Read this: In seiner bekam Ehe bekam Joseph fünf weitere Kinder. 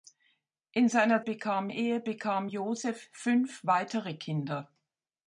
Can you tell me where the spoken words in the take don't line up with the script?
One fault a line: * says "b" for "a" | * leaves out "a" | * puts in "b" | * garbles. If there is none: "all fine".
all fine